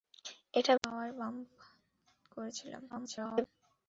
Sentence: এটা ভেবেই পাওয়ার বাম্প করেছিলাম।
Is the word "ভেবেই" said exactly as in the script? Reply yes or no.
no